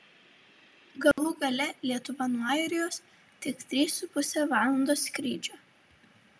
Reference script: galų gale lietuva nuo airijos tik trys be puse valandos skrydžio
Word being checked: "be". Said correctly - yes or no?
no